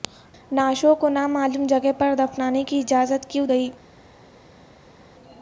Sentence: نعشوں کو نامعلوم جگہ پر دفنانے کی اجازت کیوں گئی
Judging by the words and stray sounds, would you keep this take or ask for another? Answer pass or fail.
pass